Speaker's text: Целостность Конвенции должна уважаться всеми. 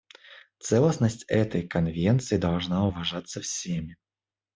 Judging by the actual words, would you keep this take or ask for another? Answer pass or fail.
fail